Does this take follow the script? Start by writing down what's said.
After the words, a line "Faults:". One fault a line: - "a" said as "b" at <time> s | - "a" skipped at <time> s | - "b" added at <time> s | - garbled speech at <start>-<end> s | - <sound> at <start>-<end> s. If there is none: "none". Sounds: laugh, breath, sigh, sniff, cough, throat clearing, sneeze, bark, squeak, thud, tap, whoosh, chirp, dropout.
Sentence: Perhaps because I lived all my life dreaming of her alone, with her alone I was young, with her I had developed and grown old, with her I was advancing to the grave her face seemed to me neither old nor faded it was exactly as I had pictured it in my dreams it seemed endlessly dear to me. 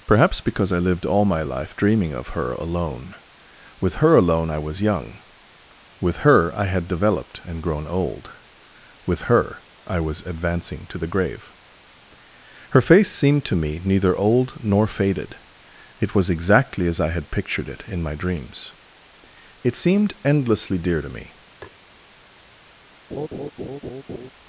Perhaps because I lived all my life dreaming of her alone, with her alone I was young, with her I had developed and grown old, with her I was advancing to the grave her face seemed to me neither old nor faded it was exactly as I had pictured it in my dreams it seemed endlessly dear to me.
Faults:
- tap at 21.6-21.8 s
- laugh at 23.1-24.3 s